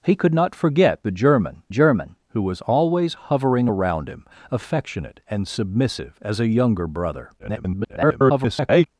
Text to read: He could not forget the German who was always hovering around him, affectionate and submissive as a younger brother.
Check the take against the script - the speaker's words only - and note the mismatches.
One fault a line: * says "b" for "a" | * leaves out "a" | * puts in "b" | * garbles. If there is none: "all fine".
* puts in "German"
* garbles